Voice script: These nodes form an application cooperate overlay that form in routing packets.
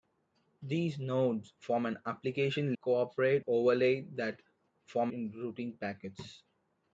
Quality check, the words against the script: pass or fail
pass